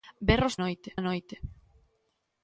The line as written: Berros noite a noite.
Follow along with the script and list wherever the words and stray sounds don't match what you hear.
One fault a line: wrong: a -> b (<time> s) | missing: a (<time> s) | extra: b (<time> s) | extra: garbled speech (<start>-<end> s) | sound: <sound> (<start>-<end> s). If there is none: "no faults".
no faults